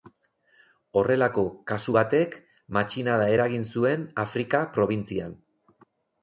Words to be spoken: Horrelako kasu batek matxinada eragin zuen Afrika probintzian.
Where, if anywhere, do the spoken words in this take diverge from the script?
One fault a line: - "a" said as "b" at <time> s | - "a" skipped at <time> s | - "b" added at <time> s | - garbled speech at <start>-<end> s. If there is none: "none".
none